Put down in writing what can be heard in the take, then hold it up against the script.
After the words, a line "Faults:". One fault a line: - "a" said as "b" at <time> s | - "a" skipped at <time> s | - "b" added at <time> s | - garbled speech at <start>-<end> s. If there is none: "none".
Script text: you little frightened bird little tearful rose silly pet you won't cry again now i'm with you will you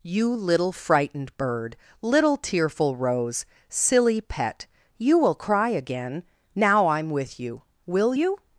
you little frightened bird little tearful rose silly pet you will cry again now i'm with you will you
Faults:
- "won't" said as "will" at 5.2 s